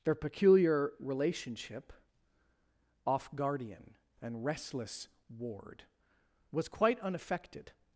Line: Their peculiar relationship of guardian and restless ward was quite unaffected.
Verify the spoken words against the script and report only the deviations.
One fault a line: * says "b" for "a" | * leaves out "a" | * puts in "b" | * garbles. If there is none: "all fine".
* says "off" for "of"